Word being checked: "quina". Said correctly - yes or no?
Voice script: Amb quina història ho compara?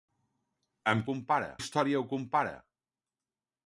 no